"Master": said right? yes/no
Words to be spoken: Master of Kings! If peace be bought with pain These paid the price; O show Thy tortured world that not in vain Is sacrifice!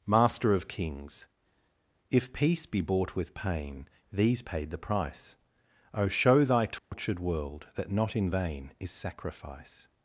yes